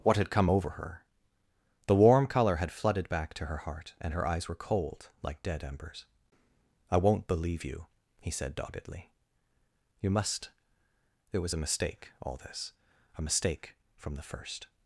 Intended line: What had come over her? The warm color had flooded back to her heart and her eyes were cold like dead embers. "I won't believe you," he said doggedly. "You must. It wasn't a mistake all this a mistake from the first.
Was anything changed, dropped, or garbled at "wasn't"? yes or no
yes